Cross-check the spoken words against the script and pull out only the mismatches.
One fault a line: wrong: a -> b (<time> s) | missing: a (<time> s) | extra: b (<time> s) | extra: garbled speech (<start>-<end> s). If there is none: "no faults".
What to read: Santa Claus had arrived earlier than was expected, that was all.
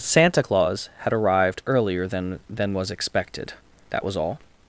extra: than (2.5 s)